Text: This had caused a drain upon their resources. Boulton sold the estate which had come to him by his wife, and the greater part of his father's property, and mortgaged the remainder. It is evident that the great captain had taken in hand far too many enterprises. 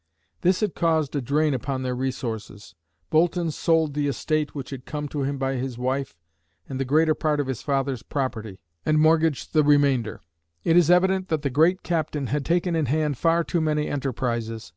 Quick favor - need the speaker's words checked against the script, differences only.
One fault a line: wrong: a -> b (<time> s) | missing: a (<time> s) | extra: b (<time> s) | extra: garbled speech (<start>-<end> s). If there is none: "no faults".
no faults